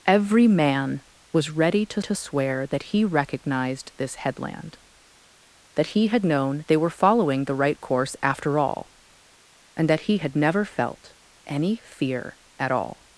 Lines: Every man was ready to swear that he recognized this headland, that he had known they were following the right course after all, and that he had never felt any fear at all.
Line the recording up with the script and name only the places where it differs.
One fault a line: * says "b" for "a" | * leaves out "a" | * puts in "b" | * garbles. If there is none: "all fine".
* puts in "to"